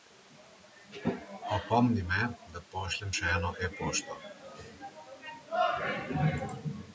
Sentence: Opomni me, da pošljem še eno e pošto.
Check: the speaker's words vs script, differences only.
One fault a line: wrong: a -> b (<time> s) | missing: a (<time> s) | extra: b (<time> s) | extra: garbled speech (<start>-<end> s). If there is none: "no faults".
no faults